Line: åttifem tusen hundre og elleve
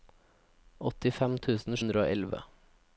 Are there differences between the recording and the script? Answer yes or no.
no